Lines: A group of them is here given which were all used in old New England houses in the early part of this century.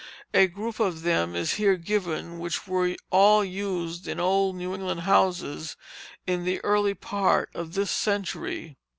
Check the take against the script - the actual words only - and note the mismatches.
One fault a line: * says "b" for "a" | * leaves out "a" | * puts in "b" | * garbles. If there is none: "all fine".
all fine